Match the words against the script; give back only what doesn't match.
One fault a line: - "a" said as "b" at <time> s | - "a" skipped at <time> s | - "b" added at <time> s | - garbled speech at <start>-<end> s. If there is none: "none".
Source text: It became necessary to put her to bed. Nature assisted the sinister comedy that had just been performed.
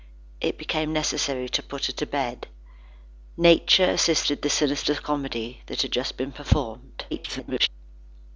- garbled speech at 7.1-7.7 s